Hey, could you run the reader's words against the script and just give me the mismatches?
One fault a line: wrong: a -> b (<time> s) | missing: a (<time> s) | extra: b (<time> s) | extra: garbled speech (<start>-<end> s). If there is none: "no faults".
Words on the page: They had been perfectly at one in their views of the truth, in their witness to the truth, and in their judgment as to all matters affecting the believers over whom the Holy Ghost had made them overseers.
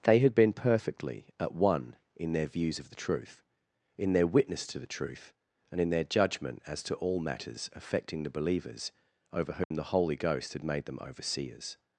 no faults